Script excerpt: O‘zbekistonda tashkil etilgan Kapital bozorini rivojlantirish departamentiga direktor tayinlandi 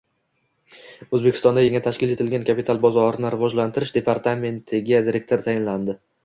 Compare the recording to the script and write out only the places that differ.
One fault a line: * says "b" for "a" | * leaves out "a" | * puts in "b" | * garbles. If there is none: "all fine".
* puts in "yangi"